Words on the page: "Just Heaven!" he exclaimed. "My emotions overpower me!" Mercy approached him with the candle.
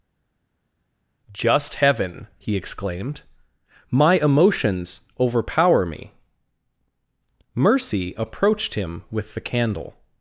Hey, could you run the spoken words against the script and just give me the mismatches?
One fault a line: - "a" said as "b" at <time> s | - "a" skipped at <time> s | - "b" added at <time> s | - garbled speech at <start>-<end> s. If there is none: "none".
none